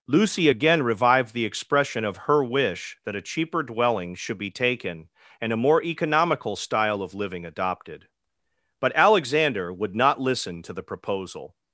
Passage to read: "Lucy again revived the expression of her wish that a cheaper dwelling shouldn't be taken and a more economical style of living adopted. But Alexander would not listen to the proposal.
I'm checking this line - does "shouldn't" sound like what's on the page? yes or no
no